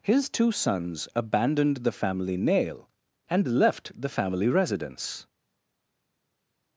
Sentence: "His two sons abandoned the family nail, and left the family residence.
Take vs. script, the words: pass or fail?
pass